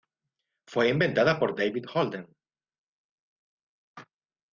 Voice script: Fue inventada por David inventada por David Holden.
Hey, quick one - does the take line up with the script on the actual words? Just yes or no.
no